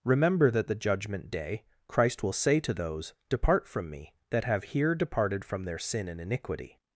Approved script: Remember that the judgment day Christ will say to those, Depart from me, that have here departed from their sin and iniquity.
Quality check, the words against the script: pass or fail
pass